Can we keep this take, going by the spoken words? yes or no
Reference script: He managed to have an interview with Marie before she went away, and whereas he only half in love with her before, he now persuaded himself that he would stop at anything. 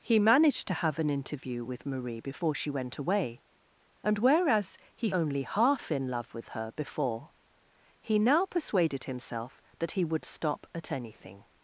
yes